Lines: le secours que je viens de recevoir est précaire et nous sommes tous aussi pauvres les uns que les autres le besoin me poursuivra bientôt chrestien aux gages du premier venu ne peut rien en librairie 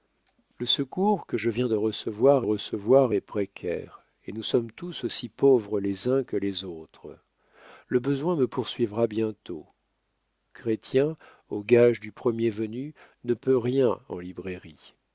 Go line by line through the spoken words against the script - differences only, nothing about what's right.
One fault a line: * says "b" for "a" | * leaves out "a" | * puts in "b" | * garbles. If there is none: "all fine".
* puts in "recevoir"